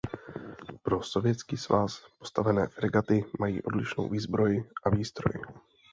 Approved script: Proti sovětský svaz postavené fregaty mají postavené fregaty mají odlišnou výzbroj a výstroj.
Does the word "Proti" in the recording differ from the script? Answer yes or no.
yes